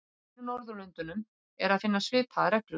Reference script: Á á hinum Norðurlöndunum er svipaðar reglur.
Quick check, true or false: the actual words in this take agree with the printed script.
false